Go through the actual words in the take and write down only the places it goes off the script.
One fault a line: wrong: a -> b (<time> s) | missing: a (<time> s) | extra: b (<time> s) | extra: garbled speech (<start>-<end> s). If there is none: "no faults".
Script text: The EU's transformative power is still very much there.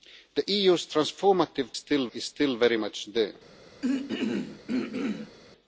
wrong: power -> still (1.7 s)